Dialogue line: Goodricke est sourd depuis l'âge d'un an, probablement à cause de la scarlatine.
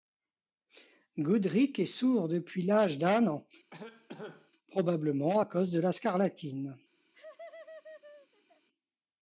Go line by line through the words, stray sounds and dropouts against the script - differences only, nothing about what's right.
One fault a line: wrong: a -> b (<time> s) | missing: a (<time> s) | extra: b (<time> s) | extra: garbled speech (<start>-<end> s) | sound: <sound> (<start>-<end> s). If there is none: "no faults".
sound: cough (3.7-4.5 s)
sound: laugh (7.1-8.7 s)